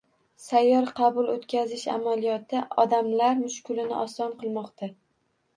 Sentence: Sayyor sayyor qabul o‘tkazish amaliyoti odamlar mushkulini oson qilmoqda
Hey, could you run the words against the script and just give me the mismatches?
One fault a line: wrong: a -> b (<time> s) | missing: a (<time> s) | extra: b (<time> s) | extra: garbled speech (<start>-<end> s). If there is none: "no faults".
missing: sayyor (0.9 s)